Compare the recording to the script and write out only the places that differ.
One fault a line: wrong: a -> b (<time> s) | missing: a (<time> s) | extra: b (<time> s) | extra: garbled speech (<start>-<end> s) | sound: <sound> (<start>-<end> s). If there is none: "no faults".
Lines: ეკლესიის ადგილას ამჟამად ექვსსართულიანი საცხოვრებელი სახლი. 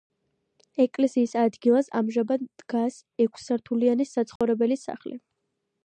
extra: დგას (2.6 s)
sound: dropout (4.4-4.4 s)